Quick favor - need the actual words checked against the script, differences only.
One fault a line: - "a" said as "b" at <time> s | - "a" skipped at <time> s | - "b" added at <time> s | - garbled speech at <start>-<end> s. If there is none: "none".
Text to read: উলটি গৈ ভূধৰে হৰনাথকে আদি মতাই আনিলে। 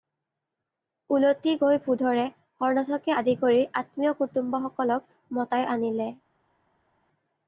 - "কৰি আত্মীয় কুটুম্বসকলক" added at 3.4 s